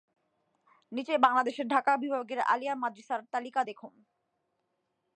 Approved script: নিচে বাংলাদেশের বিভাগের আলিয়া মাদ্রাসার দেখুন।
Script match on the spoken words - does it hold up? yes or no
no